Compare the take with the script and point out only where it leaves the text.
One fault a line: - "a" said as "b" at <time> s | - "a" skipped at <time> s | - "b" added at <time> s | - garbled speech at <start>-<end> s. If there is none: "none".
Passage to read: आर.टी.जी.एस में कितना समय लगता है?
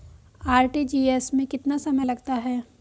none